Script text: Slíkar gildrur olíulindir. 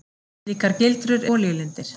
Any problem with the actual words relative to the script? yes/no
no